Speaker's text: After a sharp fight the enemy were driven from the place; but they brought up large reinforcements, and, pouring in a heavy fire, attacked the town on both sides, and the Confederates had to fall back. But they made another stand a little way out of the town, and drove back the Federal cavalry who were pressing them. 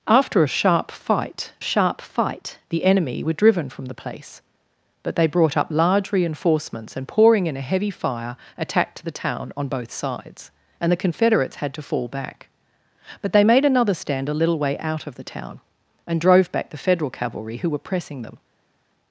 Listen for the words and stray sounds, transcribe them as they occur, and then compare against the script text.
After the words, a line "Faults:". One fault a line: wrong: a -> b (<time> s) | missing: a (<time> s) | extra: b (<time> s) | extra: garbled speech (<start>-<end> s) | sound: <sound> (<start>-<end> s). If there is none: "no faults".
After a sharp fight sharp fight the enemy were driven from the place; but they brought up large reinforcements, and, pouring in a heavy fire, attacked the town on both sides, and the Confederates had to fall back. But they made another stand a little way out of the town, and drove back the Federal cavalry who were pressing them.
Faults:
extra: sharp fight (1.6 s)